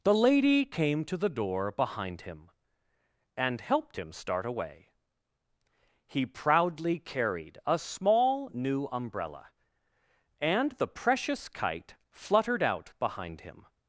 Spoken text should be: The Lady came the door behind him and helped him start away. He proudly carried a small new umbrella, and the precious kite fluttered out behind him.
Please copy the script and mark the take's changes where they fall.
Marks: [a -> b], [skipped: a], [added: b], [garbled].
The Lady came [added: to] the door behind him and helped him start away. He proudly carried a small new umbrella, and the precious kite fluttered out behind him.